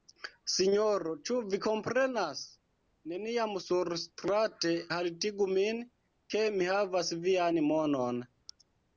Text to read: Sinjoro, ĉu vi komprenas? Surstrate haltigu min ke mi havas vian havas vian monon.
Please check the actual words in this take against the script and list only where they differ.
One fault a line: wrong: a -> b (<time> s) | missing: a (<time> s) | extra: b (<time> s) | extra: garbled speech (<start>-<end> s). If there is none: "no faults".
extra: Neniam (3.1 s)
missing: havas vian (7.6 s)